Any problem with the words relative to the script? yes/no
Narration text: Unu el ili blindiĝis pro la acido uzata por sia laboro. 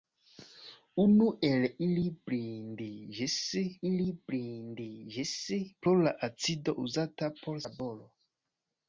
yes